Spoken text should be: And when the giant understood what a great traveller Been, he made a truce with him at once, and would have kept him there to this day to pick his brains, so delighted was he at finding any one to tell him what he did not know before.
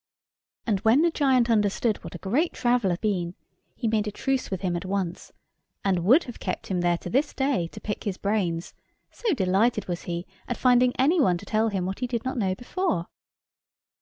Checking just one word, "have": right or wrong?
right